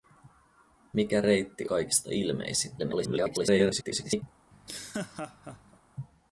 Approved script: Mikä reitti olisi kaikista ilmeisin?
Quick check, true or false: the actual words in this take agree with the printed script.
false